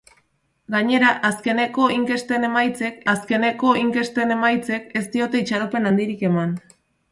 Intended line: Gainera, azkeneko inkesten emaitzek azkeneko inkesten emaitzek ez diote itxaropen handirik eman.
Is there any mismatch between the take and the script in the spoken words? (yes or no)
no